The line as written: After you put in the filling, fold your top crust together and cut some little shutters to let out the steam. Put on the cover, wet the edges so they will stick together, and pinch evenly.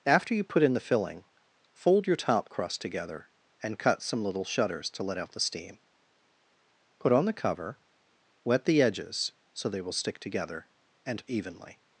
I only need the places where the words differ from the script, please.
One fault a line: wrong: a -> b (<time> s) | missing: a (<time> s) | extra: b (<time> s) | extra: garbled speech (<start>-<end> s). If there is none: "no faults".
missing: pinch (11.2 s)